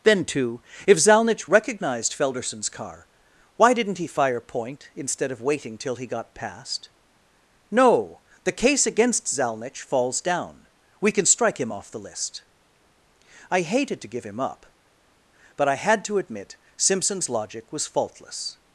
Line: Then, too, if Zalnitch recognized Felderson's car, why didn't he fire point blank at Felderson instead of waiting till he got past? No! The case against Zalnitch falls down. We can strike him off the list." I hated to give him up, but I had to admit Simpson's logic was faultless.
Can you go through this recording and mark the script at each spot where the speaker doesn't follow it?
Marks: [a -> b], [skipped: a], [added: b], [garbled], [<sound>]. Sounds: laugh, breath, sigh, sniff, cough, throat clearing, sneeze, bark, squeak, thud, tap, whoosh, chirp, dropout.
Then, too, if Zalnitch recognized Felderson's car, why didn't he fire point [skipped: blank at Felderson] instead of waiting till he got past? No! The case against Zalnitch falls down. We can strike him off the list." I hated to give him up, but I had to admit Simpson's logic was faultless.